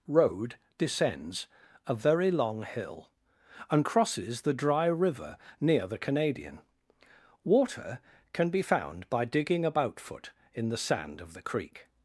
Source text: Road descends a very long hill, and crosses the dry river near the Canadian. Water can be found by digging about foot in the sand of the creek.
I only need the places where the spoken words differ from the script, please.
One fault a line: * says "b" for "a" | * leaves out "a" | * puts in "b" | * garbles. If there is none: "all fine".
all fine